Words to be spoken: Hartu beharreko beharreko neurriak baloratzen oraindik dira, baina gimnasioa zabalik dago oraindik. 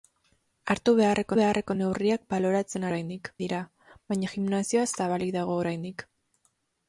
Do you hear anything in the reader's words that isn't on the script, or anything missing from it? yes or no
no